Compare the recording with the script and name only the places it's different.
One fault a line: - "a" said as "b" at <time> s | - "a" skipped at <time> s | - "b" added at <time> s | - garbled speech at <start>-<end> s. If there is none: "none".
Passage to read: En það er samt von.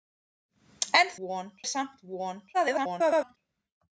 - "það" said as "von" at 1.2 s
- garbled speech at 2.5-3.4 s